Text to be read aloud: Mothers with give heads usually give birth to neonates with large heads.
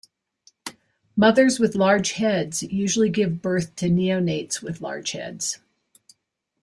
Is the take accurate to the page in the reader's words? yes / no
no